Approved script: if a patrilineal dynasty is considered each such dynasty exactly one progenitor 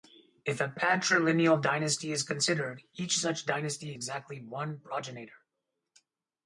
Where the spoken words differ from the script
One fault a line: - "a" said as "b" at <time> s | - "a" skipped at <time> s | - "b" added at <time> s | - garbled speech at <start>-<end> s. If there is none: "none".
none